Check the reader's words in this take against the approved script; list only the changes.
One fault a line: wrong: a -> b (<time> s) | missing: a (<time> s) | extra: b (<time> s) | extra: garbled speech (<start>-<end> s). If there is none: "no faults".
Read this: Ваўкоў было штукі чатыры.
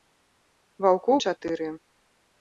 missing: было штукі (1.2 s)